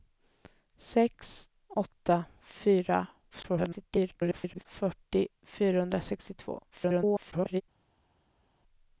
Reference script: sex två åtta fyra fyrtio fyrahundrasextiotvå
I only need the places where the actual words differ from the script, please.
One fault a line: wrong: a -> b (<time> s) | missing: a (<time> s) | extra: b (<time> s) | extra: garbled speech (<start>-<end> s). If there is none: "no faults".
missing: två (1.5 s)
extra: garbled speech (3.3-4.6 s)
extra: garbled speech (6.7-7.6 s)